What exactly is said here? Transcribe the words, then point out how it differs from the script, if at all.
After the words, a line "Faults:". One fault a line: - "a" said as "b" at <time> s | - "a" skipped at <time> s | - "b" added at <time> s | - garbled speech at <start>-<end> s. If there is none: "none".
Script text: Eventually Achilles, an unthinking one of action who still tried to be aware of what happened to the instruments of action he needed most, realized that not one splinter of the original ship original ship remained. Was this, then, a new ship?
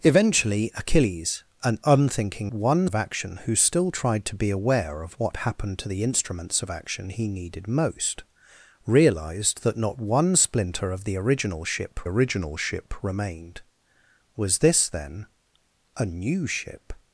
Eventually Achilles, an unthinking one of action who still tried to be aware of what happened to the instruments of action he needed most, realized that not one splinter of the original ship original ship remained. Was this, then, a new ship?
Faults:
none